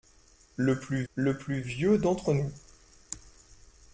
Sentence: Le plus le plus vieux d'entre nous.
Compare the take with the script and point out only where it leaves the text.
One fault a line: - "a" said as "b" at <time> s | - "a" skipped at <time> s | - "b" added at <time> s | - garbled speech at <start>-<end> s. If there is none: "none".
none